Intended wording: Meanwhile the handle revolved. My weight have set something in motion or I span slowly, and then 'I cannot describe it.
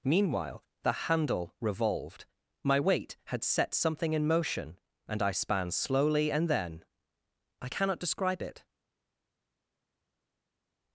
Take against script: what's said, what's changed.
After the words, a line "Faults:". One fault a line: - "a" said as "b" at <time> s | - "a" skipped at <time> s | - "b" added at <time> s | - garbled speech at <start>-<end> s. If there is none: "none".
Meanwhile the handle revolved. My weight had set something in motion and I span slowly, and then 'I cannot describe it.
Faults:
- "have" said as "had" at 3.3 s
- "or" said as "and" at 5.1 s